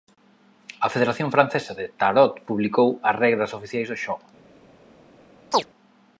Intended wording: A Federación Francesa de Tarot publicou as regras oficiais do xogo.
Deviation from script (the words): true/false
false